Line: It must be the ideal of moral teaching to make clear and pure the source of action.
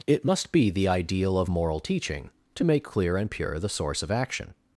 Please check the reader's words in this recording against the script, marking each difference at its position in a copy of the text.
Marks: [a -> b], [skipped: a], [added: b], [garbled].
It must be the ideal of moral teaching to make clear and pure the source of action.